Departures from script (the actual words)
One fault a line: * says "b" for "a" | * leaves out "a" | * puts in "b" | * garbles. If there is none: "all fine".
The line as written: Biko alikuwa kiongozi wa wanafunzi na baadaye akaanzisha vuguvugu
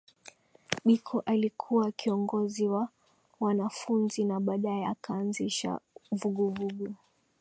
all fine